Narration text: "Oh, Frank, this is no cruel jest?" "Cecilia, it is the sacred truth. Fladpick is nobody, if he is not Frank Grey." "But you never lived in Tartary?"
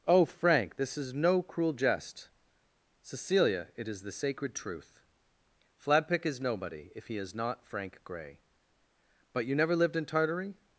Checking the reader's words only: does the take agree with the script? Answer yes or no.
yes